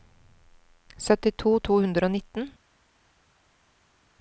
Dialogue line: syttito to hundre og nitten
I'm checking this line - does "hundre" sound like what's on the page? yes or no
yes